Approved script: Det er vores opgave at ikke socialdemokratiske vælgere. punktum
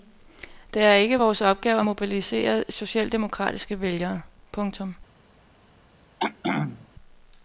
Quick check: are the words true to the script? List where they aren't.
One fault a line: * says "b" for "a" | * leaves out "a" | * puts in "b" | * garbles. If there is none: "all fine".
* puts in "ikke"
* says "mobilisere" for "ikke"